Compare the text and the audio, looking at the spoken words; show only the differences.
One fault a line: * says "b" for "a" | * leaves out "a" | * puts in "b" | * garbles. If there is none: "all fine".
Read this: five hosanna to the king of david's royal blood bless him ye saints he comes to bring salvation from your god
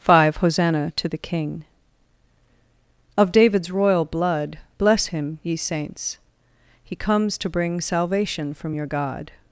all fine